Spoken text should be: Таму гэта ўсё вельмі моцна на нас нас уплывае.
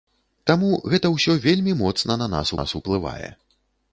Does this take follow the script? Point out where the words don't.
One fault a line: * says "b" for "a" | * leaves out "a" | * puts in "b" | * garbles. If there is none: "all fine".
all fine